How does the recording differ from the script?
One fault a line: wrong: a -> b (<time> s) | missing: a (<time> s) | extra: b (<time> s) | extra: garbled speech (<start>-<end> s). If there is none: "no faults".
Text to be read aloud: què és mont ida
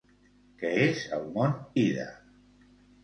extra: el (1.2 s)